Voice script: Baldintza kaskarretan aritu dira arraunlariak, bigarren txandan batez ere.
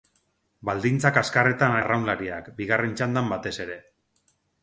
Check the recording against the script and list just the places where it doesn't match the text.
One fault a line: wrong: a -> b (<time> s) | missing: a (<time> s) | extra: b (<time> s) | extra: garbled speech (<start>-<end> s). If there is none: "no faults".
missing: aritu dira (1.8 s)